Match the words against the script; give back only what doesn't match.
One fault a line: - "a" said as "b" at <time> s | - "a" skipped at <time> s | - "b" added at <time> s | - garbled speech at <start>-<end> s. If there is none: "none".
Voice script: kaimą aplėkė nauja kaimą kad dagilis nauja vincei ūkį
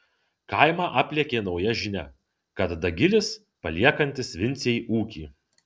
- "kaimą" said as "žinia" at 1.8 s
- "nauja" said as "paliekantis" at 3.7 s